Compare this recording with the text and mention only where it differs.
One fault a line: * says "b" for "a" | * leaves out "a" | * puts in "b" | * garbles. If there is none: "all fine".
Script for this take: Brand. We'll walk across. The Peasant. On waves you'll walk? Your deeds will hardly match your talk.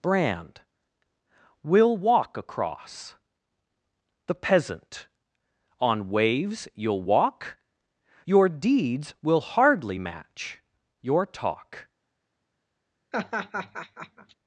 all fine